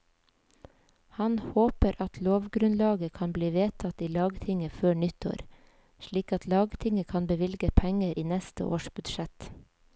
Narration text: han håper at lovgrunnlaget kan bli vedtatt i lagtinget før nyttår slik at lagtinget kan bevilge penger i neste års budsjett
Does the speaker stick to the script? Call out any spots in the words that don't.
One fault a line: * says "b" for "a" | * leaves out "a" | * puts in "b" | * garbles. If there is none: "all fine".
all fine